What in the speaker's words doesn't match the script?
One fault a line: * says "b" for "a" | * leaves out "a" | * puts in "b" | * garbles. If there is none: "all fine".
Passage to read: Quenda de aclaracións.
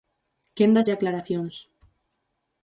all fine